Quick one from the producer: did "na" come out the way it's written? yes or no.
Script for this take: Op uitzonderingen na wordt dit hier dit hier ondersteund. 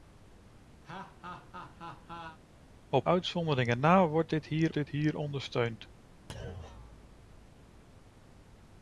yes